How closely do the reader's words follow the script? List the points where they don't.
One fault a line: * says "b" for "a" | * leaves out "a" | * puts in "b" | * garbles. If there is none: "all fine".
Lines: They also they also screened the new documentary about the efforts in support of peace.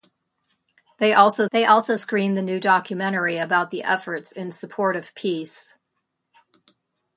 all fine